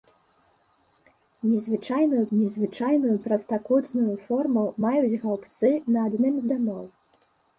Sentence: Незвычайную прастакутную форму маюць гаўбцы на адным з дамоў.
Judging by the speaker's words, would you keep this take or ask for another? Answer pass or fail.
fail